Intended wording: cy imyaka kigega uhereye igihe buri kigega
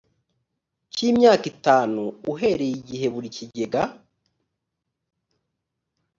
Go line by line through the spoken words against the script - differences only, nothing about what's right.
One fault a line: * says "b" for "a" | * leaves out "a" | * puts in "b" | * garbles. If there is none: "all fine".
* says "itanu" for "kigega"